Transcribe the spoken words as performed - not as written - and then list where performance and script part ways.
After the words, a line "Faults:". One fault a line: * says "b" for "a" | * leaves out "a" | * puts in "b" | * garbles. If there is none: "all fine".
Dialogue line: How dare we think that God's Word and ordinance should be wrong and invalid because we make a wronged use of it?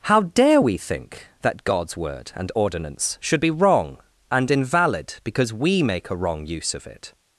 How dare we think that God's Word and ordinance should be wrong and invalid because we make a wrong use of it?
Faults:
* says "wrong" for "wronged"